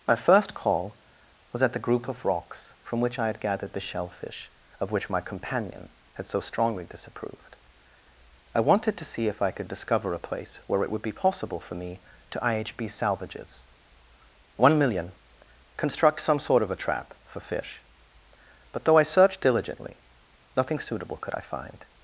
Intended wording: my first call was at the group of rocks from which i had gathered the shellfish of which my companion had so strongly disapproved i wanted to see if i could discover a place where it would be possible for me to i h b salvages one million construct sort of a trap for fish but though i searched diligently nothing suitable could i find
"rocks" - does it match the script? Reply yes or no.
yes